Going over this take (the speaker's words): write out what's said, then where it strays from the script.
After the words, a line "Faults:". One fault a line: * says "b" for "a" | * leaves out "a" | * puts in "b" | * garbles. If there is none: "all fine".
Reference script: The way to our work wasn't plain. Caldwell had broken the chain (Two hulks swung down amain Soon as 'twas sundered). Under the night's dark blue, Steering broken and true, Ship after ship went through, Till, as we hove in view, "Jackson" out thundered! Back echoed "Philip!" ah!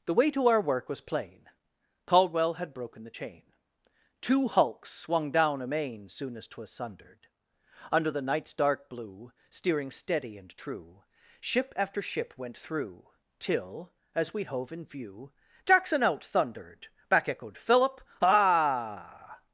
The way to our work was plain. Caldwell had broken the chain (Two hulks swung down amain Soon as 'twas sundered). Under the night's dark blue, Steering steady and true, Ship after ship went through, Till, as we hove in view, "Jackson" out thundered! Back echoed "Philip!" ah!
Faults:
* says "was" for "wasn't"
* says "steady" for "broken"